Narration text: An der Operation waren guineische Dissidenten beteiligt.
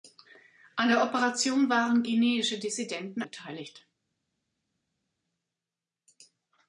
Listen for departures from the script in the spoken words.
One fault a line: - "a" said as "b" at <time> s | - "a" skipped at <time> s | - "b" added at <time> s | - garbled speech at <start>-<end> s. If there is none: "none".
none